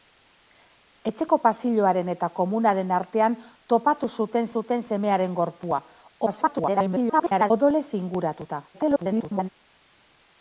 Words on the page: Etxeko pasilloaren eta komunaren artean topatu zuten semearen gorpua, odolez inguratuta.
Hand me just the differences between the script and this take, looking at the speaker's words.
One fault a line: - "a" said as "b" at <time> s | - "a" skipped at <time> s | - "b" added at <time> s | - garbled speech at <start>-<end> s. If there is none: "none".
- "zuten" added at 4.6 s
- garbled speech at 6.3-7.5 s
- garbled speech at 8.7-9.5 s